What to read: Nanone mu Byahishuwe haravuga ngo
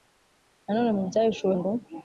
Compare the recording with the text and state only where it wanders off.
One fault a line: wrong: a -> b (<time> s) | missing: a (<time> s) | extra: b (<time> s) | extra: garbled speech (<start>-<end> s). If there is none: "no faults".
missing: haravuga (1.5 s)